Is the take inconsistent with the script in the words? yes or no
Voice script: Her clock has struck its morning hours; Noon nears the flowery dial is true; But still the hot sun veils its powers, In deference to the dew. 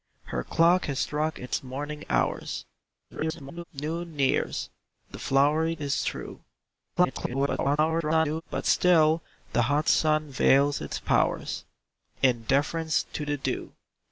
yes